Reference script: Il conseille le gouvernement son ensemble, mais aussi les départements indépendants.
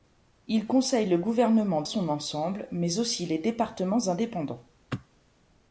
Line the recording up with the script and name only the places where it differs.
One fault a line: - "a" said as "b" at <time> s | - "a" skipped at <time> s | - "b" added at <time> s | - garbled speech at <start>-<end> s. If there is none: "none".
none